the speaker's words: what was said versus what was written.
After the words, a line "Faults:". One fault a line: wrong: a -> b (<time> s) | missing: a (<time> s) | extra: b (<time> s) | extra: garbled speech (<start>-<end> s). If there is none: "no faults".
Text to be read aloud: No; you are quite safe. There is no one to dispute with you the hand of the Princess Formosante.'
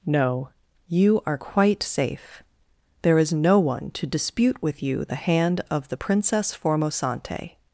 No; you are quite safe. There is no one to dispute with you the hand of the Princess Formosante.'
Faults:
no faults